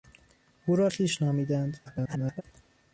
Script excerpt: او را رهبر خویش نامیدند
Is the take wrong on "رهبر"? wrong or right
wrong